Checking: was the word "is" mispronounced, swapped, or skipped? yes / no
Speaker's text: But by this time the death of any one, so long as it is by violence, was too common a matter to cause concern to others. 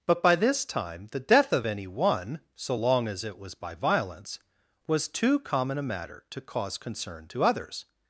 yes